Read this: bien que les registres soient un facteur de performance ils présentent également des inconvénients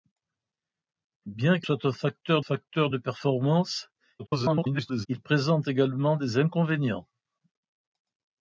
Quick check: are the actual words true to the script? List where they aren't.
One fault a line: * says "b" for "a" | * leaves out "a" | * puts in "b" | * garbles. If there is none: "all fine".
* leaves out "les registres"
* puts in "facteur"
* garbles